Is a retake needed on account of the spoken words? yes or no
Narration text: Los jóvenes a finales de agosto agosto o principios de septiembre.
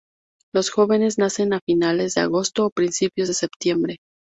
yes